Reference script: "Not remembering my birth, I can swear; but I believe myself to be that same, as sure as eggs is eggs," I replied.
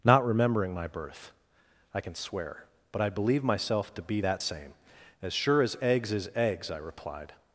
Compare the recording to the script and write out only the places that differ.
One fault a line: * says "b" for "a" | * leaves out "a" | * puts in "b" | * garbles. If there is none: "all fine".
all fine